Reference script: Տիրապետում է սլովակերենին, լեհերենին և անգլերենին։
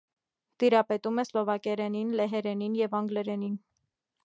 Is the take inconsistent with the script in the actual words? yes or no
no